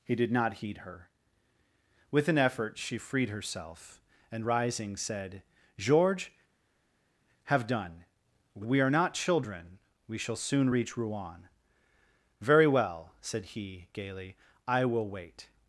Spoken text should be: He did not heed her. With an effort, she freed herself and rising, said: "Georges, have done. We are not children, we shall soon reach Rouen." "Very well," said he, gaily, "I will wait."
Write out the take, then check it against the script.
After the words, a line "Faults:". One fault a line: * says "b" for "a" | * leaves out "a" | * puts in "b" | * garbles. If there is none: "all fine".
He did not heed her. With an effort, she freed herself and rising, said: "Georges, have done. We are not children, we shall soon reach Rouen." "Very well," said he, gaily, "I will wait."
Faults:
all fine